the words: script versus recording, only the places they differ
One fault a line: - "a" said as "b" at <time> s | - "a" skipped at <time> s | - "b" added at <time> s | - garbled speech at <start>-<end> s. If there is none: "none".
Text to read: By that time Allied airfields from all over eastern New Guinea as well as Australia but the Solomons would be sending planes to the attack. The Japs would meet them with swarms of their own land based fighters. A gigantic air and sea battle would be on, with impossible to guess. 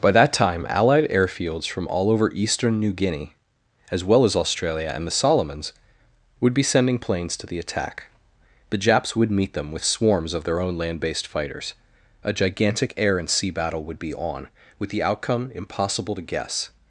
- "but" said as "and" at 4.9 s
- "the outcome" added at 14.9 s